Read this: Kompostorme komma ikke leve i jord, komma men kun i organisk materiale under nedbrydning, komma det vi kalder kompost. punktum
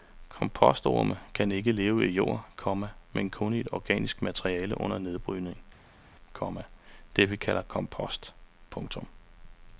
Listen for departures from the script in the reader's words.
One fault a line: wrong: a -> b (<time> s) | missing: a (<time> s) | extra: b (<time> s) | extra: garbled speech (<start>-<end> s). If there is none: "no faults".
wrong: komma -> kan (1.3 s)